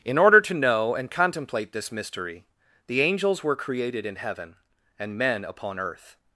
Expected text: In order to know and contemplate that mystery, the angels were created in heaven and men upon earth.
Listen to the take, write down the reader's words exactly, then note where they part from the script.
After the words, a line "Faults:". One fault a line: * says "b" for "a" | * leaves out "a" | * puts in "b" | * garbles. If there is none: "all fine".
In order to know and contemplate this mystery, the angels were created in heaven and men upon earth.
Faults:
* says "this" for "that"